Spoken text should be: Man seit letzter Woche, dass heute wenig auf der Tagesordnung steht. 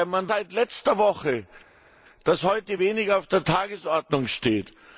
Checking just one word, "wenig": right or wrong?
right